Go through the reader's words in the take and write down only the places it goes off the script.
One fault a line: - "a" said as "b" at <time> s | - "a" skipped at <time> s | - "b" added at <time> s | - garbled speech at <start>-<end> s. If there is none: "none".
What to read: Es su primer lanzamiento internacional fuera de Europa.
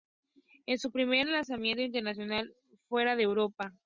none